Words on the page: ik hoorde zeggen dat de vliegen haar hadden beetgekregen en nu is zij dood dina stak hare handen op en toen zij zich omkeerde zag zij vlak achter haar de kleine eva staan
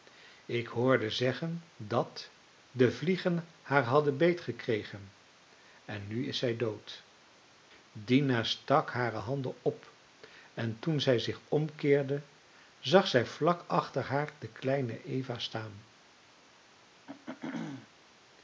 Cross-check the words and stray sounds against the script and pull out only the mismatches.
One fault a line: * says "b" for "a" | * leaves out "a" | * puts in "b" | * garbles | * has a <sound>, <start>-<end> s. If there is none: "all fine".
* has a throat clearing, 17.1-17.9 s